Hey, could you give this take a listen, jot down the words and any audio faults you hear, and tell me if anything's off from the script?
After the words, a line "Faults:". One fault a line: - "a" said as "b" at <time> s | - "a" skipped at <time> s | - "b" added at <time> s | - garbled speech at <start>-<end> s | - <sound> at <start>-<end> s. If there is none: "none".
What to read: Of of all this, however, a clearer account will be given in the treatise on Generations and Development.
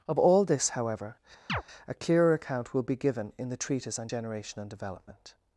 Of all this, however, a clearer account will be given in the treatise on Generation and Development.
Faults:
- "of" skipped at 0.2 s
- chirp at 1.5-1.6 s
- "Generations" said as "Generation" at 4.1 s